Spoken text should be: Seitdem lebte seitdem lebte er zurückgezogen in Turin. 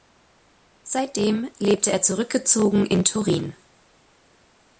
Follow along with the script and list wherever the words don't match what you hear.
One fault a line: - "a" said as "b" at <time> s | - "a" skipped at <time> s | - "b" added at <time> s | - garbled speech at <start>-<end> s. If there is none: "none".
- "seitdem lebte" skipped at 1.9 s